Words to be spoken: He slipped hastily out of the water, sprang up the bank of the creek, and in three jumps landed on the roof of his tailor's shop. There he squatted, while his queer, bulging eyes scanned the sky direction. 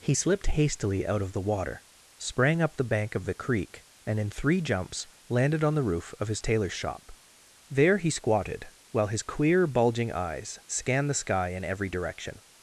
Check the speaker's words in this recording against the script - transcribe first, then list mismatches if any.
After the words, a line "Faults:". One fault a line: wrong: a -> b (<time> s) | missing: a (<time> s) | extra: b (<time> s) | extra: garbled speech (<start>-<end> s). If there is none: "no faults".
He slipped hastily out of the water, sprang up the bank of the creek, and in three jumps landed on the roof of his tailor's shop. There he squatted, while his queer, bulging eyes scanned the sky in every direction.
Faults:
extra: in every (11.5 s)